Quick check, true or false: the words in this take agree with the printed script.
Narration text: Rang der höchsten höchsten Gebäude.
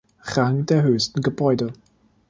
false